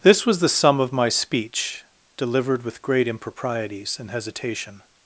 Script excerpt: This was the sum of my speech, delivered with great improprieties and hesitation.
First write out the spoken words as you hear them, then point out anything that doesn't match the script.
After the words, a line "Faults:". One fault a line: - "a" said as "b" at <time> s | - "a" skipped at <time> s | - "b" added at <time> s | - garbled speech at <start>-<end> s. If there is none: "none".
This was the sum of my speech, delivered with great improprieties and hesitation.
Faults:
none